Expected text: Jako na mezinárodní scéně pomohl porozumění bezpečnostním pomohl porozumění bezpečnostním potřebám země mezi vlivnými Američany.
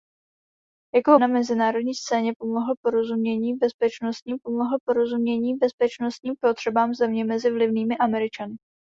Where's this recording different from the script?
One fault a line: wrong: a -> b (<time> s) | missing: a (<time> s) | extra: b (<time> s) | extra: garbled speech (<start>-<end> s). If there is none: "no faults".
no faults